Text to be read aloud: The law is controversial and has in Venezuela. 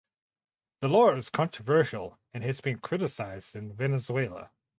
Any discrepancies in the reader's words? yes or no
yes